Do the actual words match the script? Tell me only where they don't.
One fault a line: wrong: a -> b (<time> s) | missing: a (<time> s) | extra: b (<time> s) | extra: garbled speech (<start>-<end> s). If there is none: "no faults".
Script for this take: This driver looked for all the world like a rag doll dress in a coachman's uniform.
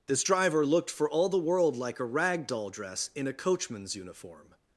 no faults